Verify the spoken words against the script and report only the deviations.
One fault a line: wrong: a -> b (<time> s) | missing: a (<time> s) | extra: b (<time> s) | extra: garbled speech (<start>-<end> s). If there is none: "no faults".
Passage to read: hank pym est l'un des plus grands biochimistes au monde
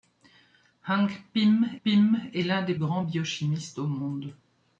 extra: pym (1.8 s)
missing: plus (2.7 s)